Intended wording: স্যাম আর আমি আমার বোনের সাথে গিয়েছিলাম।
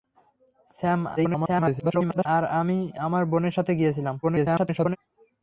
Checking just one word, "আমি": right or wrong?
right